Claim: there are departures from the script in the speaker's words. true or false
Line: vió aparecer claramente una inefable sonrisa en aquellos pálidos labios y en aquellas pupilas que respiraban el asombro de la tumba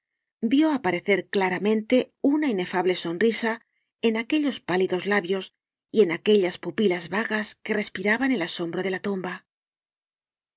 true